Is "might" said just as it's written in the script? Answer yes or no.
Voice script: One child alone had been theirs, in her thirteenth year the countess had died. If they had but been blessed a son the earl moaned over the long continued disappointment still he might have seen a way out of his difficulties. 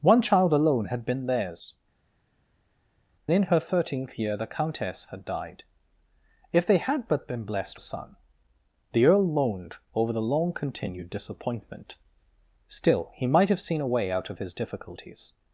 yes